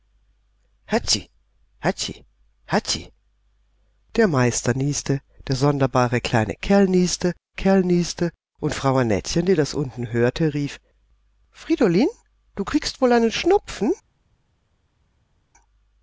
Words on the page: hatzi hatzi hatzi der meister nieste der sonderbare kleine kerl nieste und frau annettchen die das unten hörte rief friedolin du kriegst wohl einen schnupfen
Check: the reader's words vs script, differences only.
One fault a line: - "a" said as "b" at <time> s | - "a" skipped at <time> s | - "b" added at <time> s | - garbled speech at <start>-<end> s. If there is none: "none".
- "kerl nieste" added at 7.5 s